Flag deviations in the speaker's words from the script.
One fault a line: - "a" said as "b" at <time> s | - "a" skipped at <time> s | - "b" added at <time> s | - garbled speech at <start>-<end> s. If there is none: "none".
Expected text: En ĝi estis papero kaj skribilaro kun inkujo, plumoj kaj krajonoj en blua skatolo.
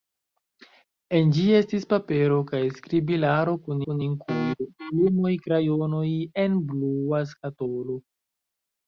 - "kun" added at 3.9 s
- "kaj" skipped at 5.3 s